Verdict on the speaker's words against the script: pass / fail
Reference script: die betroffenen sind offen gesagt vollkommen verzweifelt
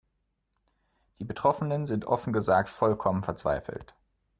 pass